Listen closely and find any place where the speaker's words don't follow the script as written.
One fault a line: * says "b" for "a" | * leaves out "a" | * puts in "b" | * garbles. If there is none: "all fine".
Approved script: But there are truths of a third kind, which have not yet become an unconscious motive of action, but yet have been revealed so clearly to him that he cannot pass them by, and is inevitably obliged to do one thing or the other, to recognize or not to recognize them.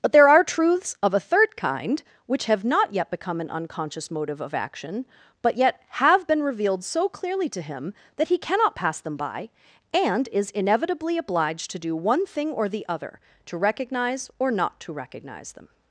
all fine